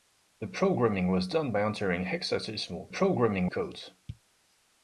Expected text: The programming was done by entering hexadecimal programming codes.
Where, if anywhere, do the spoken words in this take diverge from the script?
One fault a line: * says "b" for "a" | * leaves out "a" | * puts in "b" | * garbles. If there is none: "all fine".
all fine